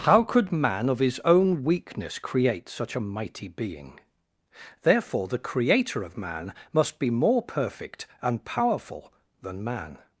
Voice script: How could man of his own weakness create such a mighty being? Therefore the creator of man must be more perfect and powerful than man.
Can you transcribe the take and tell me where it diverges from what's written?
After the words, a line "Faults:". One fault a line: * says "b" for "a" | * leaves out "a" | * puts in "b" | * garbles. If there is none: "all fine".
How could man of his own weakness create such a mighty being? Therefore the creator of man must be more perfect and powerful than man.
Faults:
all fine